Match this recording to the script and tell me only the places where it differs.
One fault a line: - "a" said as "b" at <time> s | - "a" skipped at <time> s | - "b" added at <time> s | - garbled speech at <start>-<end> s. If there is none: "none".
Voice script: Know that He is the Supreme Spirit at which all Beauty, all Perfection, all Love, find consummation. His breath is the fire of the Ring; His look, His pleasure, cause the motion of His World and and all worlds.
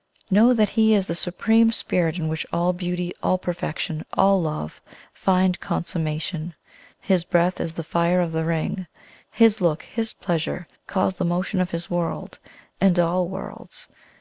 - "at" said as "in" at 2.2 s
- "and" skipped at 13.0 s